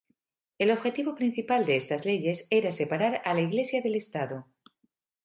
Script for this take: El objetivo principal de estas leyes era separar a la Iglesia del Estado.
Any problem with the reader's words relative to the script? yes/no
no